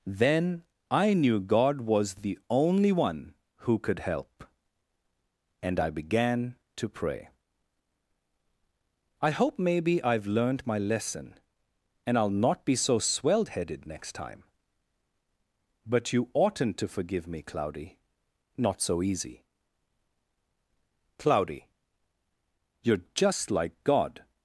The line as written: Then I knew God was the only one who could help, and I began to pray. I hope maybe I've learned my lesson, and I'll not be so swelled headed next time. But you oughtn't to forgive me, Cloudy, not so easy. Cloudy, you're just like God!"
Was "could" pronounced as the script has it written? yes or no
yes